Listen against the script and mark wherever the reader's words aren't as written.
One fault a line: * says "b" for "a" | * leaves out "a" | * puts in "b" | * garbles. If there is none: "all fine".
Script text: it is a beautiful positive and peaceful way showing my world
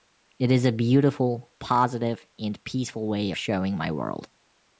all fine